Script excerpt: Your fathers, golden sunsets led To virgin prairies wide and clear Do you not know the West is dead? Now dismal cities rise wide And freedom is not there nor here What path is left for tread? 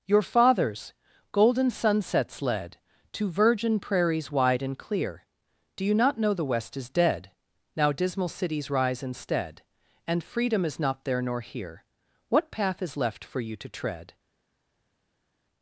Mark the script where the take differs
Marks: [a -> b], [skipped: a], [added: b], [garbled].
Your fathers, golden sunsets led To virgin prairies wide and clear Do you not know the West is dead? Now dismal cities rise [wide -> instead] And freedom is not there nor here What path is left for [added: you to] tread?